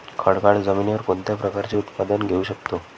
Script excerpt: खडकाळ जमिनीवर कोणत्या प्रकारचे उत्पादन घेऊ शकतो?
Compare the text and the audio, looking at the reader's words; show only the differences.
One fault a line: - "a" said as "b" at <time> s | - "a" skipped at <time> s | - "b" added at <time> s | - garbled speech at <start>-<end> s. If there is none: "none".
none